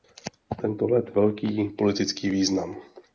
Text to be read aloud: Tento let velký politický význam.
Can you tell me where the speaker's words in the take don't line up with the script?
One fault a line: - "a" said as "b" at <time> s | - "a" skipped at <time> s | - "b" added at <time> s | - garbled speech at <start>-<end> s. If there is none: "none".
none